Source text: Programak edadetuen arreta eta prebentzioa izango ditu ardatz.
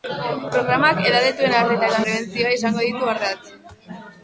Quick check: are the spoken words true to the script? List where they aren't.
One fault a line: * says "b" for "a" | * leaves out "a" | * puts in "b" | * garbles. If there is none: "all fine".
all fine